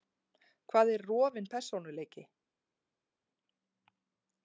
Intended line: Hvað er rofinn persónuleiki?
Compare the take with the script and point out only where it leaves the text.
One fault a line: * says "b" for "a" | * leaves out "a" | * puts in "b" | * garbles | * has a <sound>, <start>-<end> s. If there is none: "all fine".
all fine